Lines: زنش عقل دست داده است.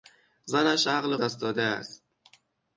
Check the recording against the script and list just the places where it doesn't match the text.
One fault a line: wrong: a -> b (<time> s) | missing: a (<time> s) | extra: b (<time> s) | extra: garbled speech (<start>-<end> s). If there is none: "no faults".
no faults